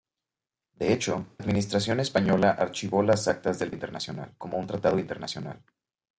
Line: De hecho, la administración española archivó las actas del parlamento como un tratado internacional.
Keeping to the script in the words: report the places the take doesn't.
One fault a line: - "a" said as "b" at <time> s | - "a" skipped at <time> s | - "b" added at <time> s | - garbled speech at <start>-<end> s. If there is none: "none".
- "la" skipped at 1.3 s
- "parlamento" said as "internacional" at 3.7 s